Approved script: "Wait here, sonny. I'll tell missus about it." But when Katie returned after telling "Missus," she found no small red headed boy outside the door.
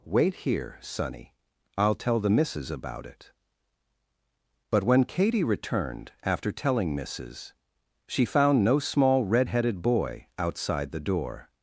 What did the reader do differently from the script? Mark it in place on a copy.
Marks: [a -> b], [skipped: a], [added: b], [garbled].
"Wait here, sonny. I'll tell [added: the] missus about it." But when Katie returned after telling "Missus," she found no small red headed boy outside the door.